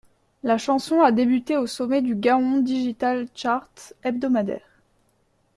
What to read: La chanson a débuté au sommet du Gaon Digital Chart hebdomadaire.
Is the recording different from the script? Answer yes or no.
no